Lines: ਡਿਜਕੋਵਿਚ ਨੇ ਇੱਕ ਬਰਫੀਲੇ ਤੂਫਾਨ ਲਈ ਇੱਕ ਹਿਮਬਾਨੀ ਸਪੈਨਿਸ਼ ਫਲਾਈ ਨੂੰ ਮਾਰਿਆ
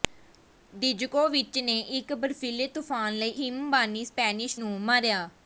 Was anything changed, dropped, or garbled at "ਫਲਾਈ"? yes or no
yes